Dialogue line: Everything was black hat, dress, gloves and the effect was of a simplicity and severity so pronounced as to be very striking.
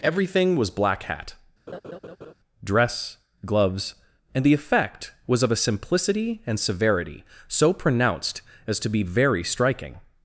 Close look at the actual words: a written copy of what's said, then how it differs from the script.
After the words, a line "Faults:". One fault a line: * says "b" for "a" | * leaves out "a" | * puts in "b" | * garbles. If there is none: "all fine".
Everything was black hat, dress, gloves and the effect was of a simplicity and severity so pronounced as to be very striking.
Faults:
all fine